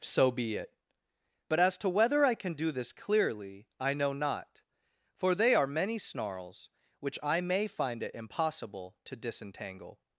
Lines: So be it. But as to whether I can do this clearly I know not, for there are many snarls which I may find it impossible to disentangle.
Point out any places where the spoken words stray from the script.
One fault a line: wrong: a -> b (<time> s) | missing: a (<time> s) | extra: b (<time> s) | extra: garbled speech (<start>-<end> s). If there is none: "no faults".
wrong: there -> they (5.3 s)